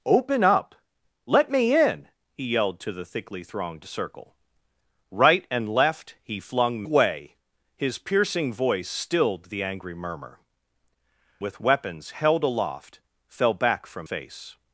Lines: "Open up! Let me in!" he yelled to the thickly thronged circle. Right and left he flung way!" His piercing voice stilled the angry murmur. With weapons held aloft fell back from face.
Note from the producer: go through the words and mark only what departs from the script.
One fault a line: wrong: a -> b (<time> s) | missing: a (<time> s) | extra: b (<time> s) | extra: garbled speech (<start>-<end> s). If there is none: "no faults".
no faults